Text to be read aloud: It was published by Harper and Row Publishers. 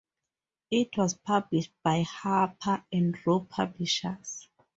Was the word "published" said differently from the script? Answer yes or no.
no